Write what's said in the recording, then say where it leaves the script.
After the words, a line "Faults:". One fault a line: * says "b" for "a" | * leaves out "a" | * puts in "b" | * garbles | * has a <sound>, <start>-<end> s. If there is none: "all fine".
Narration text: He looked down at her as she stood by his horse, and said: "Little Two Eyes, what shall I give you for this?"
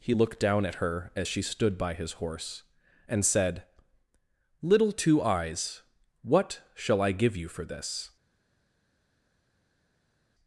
He looked down at her as she stood by his horse, and said: "Little Two Eyes, what shall I give you for this?"
Faults:
all fine